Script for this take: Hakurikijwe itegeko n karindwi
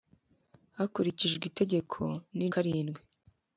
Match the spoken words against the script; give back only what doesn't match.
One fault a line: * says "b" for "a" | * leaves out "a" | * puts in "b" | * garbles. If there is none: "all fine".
all fine